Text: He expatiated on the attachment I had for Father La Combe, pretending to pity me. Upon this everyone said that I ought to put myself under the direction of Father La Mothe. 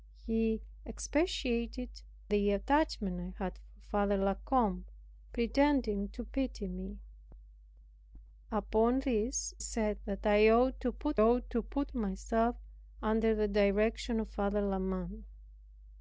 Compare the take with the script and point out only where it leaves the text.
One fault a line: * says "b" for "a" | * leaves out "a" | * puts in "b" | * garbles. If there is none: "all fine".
* leaves out "on"
* leaves out "everyone"
* puts in "ought to put"